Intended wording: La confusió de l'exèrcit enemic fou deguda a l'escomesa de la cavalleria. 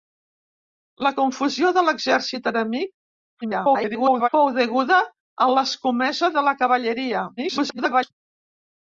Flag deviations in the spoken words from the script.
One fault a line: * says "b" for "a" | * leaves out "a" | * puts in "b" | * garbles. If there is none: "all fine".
* garbles
* garbles